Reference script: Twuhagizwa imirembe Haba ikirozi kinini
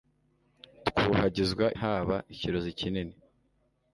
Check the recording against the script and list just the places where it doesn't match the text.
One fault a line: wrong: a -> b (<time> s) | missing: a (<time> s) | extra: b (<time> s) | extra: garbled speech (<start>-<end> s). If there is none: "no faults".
missing: imirembe (1.6 s)